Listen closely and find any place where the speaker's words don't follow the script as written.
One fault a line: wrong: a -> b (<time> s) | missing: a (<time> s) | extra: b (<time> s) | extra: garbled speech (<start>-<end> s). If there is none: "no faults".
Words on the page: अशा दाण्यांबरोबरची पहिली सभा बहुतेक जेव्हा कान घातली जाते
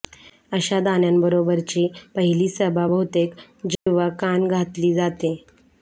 no faults